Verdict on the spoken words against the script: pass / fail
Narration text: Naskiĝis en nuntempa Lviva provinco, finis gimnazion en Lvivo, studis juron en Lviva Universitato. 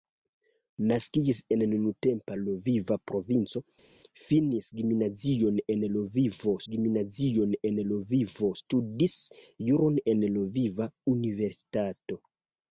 fail